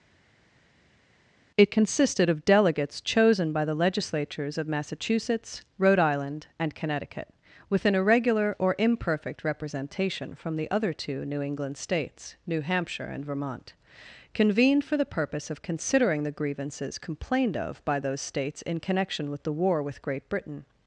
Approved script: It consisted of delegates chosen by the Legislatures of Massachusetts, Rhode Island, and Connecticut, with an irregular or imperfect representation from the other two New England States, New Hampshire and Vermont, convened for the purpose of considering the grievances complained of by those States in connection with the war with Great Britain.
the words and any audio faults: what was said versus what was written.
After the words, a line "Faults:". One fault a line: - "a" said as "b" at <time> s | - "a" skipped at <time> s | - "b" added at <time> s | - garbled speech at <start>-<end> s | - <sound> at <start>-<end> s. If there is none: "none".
It consisted of delegates chosen by the Legislatures of Massachusetts, Rhode Island, and Connecticut, with an irregular or imperfect representation from the other two New England States, New Hampshire and Vermont, convened for the purpose of considering the grievances complained of by those States in connection with the war with Great Britain.
Faults:
none